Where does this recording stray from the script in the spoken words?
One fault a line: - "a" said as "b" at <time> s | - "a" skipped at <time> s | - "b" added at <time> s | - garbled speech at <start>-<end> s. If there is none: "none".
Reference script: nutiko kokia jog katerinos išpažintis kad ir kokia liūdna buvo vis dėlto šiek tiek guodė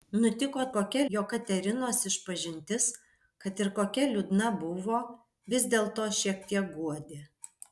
none